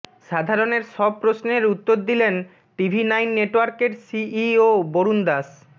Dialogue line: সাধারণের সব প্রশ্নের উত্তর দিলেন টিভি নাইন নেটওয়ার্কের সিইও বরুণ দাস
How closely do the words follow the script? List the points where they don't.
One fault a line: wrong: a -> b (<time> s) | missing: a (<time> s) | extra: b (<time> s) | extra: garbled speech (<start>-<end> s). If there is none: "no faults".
no faults